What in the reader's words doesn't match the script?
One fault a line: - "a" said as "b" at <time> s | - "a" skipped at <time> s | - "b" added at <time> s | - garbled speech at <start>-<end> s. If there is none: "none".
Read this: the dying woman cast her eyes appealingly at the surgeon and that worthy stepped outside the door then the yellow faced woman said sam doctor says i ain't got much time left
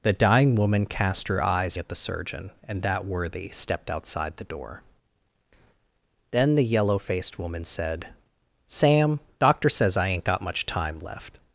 - "appealingly" skipped at 1.8 s